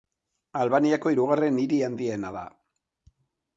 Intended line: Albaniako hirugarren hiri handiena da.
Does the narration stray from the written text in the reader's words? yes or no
no